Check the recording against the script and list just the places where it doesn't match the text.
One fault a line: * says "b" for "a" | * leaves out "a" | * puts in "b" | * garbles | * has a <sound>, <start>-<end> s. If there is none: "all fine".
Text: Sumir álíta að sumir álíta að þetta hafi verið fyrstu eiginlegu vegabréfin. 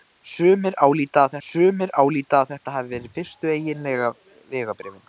all fine